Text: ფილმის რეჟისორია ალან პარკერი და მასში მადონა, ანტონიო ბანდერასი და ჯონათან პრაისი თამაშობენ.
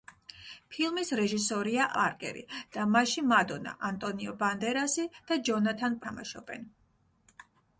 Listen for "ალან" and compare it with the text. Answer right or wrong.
wrong